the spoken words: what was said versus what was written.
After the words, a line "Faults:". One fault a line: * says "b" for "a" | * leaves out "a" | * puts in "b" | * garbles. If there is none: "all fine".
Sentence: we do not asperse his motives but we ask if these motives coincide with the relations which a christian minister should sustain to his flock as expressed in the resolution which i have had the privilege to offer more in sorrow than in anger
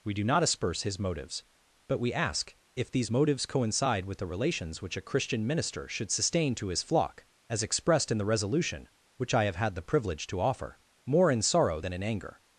we do not asperse his motives but we ask if these motives coincide with the relations which a christian minister should sustain to his flock as expressed in the resolution which i have had the privilege to offer more in sorrow than in anger
Faults:
all fine